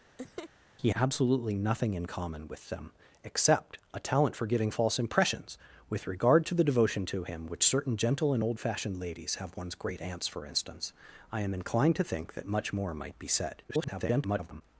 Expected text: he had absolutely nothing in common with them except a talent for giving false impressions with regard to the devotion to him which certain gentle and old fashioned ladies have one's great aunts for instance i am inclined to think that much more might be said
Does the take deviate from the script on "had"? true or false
true